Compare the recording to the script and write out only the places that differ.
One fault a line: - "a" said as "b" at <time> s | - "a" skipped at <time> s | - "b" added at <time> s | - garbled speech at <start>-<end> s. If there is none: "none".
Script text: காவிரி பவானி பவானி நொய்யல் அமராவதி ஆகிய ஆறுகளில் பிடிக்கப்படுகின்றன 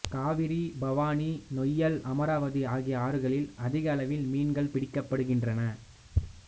- "பவானி" skipped at 1.3 s
- "அதிக அளவில் மீன்கள்" added at 3.6 s